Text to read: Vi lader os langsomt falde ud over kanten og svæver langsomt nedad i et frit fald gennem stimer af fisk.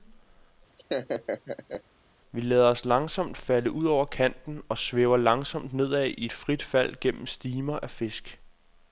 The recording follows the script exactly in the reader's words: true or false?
true